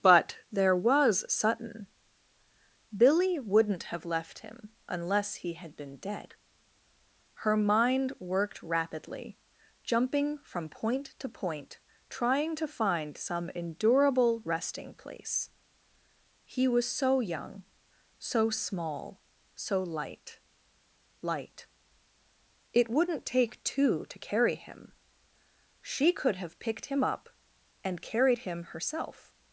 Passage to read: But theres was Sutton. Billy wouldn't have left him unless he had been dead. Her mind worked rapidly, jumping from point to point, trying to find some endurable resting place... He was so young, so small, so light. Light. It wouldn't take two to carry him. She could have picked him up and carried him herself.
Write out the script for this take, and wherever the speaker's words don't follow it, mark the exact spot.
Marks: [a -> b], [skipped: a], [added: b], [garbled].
But [theres -> there] was Sutton. Billy wouldn't have left him unless he had been dead. Her mind worked rapidly, jumping from point to point, trying to find some endurable resting place... He was so young, so small, so light. Light. It wouldn't take two to carry him. She could have picked him up and carried him herself.